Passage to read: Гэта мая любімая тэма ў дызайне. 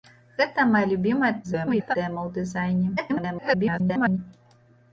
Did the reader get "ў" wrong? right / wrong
right